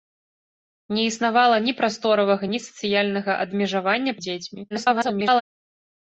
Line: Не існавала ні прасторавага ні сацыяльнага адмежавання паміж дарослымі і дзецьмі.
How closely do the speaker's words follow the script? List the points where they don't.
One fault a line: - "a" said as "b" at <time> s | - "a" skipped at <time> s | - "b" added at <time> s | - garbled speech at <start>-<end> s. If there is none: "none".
- "паміж дарослымі" skipped at 4.1 s
- garbled speech at 4.7-5.4 s